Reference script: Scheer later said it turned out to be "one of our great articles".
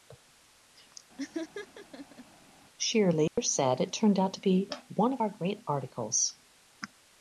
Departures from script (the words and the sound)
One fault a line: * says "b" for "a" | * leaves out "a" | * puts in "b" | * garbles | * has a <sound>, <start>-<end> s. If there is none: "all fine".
* has a laugh, 1.2-2.2 s
* has a dropout, 3.3-3.4 s